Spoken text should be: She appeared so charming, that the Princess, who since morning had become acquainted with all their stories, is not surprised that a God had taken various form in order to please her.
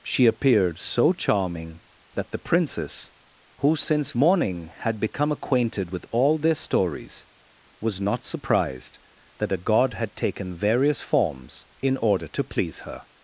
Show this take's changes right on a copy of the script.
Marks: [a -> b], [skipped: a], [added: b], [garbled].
She appeared so charming, that the Princess, who since morning had become acquainted with all their stories, [is -> was] not surprised that a God had taken various [form -> forms] in order to please her.